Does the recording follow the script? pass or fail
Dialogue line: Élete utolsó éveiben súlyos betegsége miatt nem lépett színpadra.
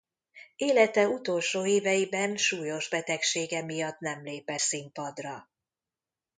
pass